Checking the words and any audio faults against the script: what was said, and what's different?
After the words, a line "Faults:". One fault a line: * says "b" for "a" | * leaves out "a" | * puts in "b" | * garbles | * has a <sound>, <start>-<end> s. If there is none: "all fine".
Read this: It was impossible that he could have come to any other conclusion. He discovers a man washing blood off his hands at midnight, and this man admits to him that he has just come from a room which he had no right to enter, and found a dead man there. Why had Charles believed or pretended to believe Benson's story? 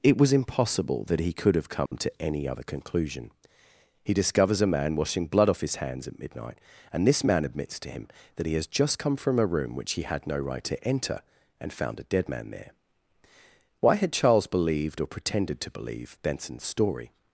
It was impossible that he could have come to any other conclusion. He discovers a man washing blood off his hands at midnight, and this man admits to him that he has just come from a room which he had no right to enter, and found a dead man there. Why had Charles believed or pretended to believe Benson's story?
Faults:
* has a dropout, 1.9-1.9 s